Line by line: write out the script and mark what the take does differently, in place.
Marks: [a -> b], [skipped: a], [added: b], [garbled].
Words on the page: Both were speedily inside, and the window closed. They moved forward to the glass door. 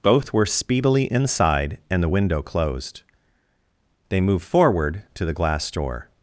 Both were speedily inside, and the window closed. They moved forward to the glass door.